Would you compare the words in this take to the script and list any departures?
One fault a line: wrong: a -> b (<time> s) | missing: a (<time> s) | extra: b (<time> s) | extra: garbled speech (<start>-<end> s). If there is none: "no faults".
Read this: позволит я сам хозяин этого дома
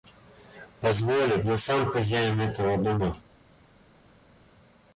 no faults